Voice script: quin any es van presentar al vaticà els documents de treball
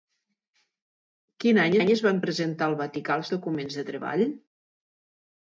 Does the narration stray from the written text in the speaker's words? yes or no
yes